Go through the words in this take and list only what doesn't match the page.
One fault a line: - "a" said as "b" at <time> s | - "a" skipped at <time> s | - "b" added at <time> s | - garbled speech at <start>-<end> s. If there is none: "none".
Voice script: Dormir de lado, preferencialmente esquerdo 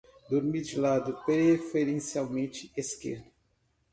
none